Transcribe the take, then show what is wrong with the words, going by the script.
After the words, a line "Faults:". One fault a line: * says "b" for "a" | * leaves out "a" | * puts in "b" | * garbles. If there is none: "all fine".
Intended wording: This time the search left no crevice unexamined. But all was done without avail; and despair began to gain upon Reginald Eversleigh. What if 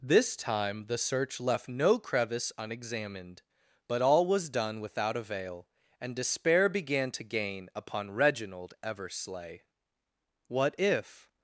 This time the search left no crevice unexamined. But all was done without avail; and despair began to gain upon Reginald Eversleigh. What if
Faults:
all fine